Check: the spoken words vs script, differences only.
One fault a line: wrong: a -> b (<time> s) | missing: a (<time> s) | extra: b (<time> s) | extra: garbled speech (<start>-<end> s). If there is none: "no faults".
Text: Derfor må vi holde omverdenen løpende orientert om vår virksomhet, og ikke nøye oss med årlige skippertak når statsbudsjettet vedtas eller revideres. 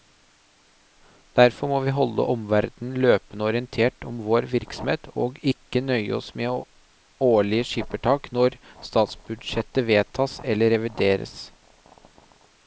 no faults